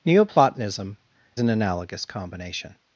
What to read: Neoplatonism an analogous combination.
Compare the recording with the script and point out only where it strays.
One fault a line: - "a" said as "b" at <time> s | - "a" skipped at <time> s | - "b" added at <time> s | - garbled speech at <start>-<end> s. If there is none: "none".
none